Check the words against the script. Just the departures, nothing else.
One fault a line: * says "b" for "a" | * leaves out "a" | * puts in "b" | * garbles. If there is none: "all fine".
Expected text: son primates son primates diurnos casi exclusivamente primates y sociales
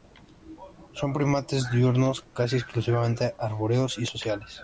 * leaves out "son primates"
* says "arbóreos" for "primates"